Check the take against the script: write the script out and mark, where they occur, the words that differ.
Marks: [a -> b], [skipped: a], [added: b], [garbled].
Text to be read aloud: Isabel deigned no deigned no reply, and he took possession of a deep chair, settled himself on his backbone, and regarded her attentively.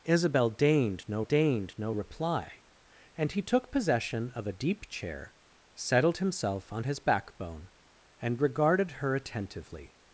Isabel deigned no deigned no reply, and he took possession of a deep chair, settled himself on his backbone, and regarded her attentively.